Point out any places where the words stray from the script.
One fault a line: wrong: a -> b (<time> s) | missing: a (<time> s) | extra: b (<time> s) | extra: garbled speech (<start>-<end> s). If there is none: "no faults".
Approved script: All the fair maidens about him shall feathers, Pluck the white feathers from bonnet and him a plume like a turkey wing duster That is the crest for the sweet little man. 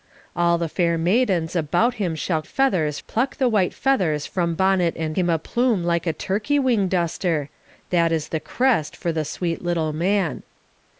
no faults